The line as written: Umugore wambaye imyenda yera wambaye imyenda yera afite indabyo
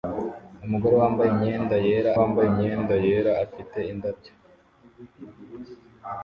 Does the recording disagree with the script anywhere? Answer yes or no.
no